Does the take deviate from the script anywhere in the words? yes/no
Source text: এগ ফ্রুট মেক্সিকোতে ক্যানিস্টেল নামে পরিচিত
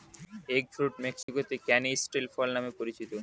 yes